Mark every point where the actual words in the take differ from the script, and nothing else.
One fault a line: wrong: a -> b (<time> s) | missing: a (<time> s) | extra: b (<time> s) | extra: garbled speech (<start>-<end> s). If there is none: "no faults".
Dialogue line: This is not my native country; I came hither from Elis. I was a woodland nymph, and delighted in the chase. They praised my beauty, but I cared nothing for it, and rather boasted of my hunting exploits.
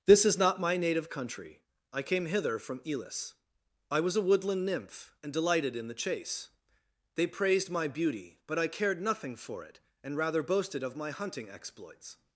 no faults